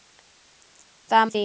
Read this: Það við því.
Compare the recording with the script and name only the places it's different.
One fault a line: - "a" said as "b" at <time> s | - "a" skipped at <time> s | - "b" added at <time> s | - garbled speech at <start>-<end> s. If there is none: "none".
none